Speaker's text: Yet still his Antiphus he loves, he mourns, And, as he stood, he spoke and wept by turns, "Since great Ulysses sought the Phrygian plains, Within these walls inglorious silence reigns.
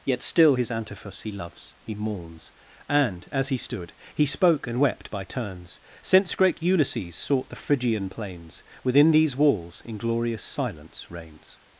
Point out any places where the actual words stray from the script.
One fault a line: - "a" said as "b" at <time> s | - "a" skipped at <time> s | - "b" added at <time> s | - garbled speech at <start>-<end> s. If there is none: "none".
none